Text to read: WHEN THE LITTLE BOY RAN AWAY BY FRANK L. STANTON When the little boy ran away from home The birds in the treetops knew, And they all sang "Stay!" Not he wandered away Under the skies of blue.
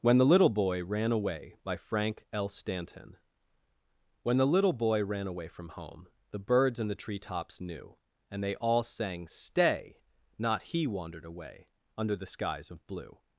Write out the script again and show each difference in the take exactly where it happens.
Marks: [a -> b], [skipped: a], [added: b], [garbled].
WHEN THE LITTLE BOY RAN AWAY BY FRANK L. STANTON When the little boy ran away from home The birds in the treetops knew, And they all sang "Stay!" Not he wandered away Under the skies of blue.